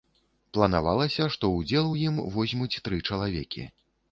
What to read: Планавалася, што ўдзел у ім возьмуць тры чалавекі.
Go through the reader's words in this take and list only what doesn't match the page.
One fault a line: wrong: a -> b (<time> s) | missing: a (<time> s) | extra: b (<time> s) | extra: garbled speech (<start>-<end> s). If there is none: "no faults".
no faults